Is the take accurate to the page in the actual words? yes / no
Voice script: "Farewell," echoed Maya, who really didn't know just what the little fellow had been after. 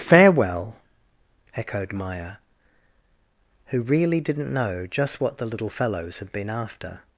no